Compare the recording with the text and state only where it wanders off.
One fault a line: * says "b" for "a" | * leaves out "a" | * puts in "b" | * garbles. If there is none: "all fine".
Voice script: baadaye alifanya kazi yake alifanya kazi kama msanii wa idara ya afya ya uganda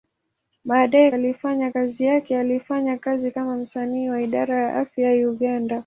all fine